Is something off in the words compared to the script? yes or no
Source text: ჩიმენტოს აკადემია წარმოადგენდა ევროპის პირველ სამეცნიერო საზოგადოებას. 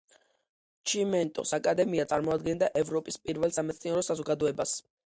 no